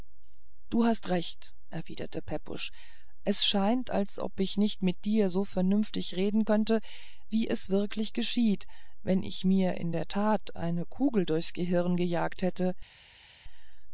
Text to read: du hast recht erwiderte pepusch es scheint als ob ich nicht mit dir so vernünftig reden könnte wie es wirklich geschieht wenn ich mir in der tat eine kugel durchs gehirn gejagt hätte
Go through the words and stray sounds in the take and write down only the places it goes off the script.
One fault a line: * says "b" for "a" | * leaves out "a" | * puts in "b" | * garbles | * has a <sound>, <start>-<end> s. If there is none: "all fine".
all fine